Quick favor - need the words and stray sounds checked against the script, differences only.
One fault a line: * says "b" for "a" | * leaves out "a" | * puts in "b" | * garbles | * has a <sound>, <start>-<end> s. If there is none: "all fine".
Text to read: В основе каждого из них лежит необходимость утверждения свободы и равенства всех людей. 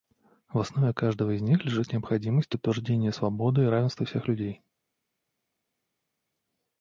all fine